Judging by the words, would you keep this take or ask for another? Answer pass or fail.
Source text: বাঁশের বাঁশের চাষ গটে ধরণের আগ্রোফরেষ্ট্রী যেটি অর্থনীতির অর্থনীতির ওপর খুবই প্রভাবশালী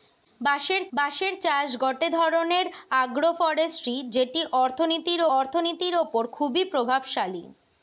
pass